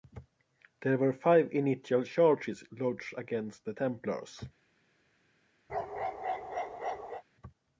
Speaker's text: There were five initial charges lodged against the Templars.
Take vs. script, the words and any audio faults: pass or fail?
fail